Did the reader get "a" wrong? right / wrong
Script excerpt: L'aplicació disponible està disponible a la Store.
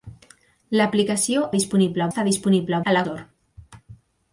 right